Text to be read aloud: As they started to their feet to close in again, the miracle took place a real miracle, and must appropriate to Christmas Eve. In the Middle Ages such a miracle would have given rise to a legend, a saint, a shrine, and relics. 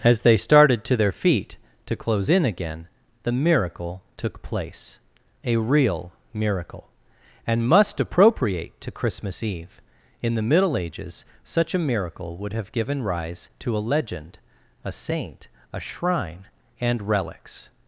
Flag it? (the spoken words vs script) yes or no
no